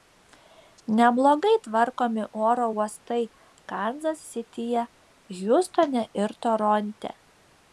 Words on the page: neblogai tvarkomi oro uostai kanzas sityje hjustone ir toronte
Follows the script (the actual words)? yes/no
yes